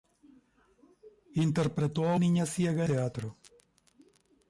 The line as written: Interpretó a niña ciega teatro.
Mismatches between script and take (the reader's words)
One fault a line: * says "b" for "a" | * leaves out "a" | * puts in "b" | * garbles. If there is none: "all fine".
all fine